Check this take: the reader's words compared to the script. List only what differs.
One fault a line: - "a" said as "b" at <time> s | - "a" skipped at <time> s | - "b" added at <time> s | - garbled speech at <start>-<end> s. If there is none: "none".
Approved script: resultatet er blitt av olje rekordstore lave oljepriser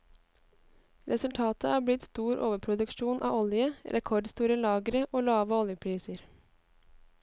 - "stor overproduksjon" added at 2.1 s
- "lagre og" added at 4.7 s